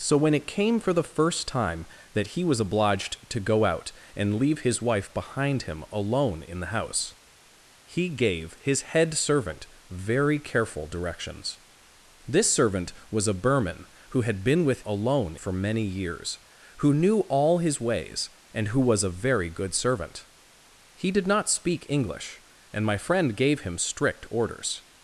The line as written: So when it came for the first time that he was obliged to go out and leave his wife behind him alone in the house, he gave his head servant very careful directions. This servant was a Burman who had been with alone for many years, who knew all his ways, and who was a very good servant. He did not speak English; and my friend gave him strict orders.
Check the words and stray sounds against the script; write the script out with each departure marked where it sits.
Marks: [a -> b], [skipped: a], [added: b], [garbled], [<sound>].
So when it came for the first time that he was obliged to go out and leave his wife behind him alone in the house, he gave his head servant very careful directions. This servant was a Burman who had been with alone for many years, who knew all his ways, and who was a very good servant. He did not speak English; and my friend gave him strict orders.